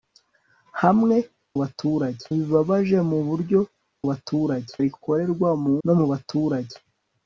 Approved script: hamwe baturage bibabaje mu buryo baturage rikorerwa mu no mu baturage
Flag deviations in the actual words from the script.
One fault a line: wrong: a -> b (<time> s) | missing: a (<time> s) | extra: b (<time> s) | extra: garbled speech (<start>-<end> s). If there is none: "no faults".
no faults